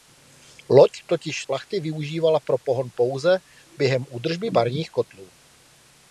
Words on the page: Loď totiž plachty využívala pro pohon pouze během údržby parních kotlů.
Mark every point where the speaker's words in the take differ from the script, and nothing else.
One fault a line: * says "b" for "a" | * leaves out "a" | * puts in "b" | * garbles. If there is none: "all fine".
all fine